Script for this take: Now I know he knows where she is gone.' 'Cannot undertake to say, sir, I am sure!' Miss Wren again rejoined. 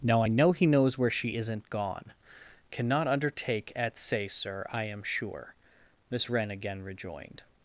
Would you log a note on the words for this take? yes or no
yes